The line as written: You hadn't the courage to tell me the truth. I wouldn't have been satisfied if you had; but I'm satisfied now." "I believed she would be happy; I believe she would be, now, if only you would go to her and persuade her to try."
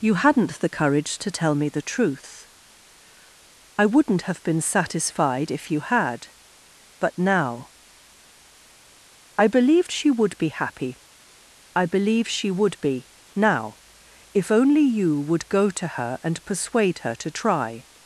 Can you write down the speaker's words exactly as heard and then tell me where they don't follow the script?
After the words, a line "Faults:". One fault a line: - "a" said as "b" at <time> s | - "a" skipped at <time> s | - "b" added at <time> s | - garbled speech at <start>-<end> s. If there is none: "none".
You hadn't the courage to tell me the truth. I wouldn't have been satisfied if you had; but now." "I believed she would be happy; I believe she would be, now, if only you would go to her and persuade her to try."
Faults:
- "I'm satisfied" skipped at 7.2 s